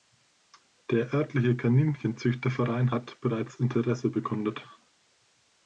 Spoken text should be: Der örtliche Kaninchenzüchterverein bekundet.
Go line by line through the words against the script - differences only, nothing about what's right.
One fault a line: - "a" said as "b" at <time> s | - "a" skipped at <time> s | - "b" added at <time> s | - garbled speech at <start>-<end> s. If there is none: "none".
- "hat bereits Interesse" added at 2.9 s